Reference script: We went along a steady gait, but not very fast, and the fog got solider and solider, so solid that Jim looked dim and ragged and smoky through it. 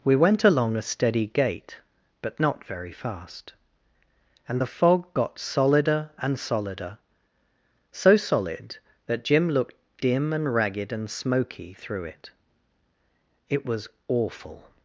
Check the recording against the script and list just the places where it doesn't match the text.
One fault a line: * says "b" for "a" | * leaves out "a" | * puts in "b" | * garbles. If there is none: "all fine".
* puts in "It was awful"